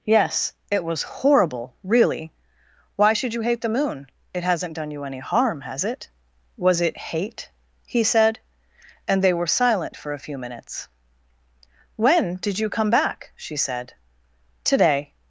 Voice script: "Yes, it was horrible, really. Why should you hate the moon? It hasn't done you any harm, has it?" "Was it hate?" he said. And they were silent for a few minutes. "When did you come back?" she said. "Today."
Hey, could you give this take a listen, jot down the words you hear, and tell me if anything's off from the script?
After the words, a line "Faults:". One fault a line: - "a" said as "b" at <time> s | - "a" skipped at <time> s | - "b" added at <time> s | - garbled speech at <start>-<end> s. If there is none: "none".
"Yes, it was horrible, really. Why should you hate the moon? It hasn't done you any harm, has it?" "Was it hate?" he said. And they were silent for a few minutes. "When did you come back?" she said. "Today."
Faults:
none